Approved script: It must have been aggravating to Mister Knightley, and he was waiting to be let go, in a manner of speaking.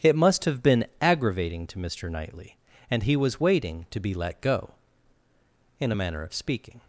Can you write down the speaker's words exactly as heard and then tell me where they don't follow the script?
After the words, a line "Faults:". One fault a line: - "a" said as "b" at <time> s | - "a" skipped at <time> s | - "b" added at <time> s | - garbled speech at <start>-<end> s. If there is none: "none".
It must have been aggravating to Mister Knightley, and he was waiting to be let go, in a manner of speaking.
Faults:
none